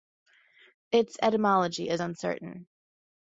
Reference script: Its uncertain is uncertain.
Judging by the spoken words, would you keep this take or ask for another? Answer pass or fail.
fail